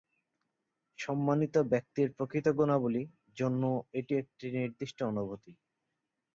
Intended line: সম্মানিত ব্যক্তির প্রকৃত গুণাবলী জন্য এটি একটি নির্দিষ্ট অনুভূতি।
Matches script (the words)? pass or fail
pass